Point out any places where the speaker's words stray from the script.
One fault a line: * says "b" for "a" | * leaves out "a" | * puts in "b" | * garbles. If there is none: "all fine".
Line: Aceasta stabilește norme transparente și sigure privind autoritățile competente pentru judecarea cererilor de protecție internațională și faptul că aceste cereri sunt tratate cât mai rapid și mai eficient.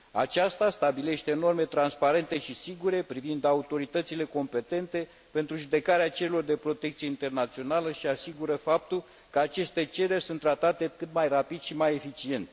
* puts in "asigură"